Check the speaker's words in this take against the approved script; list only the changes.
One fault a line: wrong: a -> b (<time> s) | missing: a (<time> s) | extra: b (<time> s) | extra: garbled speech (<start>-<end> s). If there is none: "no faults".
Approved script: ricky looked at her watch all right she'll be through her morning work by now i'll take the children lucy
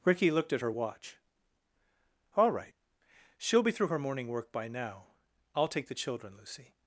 no faults